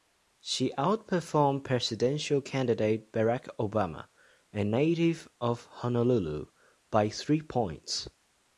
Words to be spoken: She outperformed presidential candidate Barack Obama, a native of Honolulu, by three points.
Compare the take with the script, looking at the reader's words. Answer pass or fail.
pass